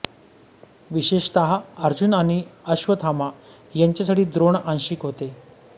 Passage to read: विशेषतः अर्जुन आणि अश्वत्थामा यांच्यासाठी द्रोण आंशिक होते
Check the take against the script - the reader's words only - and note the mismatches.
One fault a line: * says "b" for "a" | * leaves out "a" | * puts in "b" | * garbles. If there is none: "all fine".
all fine